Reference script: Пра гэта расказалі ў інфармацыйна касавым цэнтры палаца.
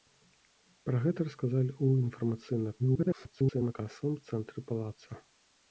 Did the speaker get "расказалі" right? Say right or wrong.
right